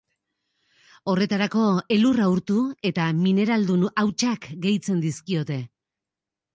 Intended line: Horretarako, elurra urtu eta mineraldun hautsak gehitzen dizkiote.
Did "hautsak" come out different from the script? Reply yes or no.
no